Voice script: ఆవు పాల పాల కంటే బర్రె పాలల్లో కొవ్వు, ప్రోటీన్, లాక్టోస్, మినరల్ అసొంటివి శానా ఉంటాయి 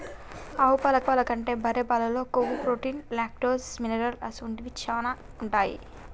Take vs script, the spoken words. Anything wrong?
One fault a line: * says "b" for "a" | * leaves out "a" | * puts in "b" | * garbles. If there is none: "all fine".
all fine